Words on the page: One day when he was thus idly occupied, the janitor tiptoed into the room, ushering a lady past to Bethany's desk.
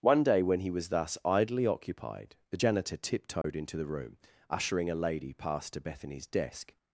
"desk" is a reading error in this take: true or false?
false